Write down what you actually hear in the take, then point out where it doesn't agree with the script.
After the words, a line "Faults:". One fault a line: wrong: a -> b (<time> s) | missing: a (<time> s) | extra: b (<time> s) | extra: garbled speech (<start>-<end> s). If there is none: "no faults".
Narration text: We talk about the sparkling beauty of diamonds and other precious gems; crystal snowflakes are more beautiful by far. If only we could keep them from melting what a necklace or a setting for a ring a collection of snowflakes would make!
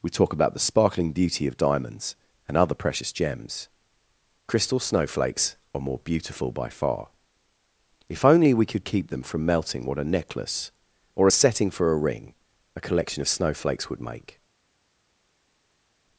We talk about the sparkling beauty of diamonds and other precious gems; crystal snowflakes are more beautiful by far. If only we could keep them from melting what a necklace or a setting for a ring a collection of snowflakes would make!
Faults:
no faults